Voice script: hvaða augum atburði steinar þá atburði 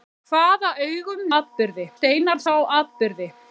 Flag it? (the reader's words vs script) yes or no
no